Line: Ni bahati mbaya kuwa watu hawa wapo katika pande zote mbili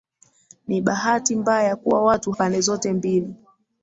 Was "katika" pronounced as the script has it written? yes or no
no